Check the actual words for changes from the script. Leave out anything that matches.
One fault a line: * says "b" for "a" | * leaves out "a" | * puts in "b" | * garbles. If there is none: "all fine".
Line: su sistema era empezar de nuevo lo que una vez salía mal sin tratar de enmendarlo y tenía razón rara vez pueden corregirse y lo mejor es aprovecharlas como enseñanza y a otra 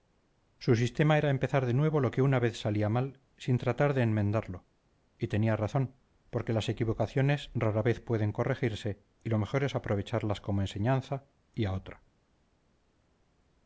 * puts in "porque las equivocaciones"